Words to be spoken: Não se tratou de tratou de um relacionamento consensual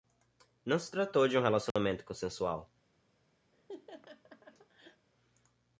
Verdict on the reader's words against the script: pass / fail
fail